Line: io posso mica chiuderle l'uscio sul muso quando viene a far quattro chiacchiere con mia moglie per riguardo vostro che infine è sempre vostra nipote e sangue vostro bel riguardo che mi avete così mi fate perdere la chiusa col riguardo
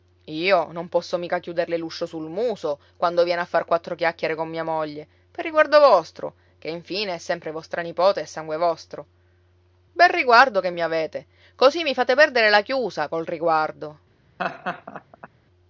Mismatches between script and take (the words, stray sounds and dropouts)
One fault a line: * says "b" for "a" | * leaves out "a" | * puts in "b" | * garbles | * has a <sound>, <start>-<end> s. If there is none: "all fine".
* puts in "non"
* has a laugh, 14.4-15.3 s